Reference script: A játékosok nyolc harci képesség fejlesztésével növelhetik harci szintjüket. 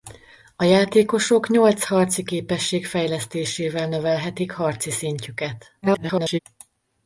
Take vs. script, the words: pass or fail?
fail